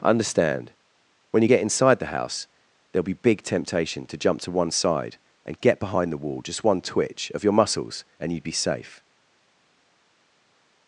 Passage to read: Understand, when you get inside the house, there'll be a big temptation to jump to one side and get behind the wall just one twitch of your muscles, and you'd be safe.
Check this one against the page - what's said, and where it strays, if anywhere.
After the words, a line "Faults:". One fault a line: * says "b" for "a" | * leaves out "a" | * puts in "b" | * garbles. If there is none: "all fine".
Understand, when you get inside the house, there'll be big temptation to jump to one side and get behind the wall just one twitch of your muscles, and you'd be safe.
Faults:
* leaves out "a"